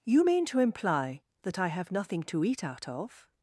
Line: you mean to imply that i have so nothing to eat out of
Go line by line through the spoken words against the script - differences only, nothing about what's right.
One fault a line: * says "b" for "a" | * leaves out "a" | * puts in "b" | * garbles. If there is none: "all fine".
* leaves out "so"